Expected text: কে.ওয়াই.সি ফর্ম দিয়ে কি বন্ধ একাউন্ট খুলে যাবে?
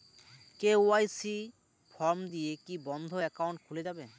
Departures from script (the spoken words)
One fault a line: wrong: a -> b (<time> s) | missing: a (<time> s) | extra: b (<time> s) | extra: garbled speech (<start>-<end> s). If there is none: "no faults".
no faults